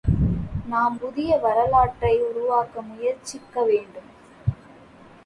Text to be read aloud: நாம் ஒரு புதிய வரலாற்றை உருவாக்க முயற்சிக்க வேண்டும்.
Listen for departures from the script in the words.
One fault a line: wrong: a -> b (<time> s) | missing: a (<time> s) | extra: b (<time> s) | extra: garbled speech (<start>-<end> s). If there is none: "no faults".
missing: ஒரு (1.0 s)